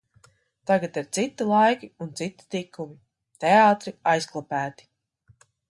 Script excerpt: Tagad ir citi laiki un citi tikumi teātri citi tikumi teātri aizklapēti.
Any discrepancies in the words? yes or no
yes